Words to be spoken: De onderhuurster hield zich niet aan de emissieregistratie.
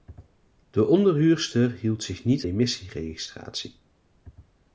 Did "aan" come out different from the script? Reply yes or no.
yes